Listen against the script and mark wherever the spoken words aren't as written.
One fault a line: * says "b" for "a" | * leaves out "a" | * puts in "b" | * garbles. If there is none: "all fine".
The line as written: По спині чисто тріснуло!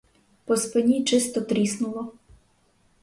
all fine